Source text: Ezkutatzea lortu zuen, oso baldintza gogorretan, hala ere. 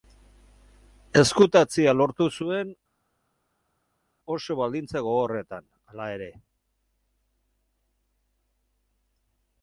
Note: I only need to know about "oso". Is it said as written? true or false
true